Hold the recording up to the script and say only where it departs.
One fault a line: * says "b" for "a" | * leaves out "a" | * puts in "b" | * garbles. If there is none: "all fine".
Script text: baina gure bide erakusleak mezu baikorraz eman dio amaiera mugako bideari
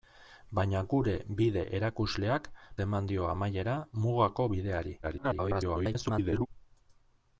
* leaves out "mezu baikorraz"
* garbles